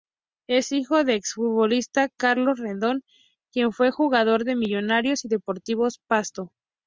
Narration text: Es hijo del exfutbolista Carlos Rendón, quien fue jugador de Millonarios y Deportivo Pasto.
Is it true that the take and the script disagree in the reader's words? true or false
false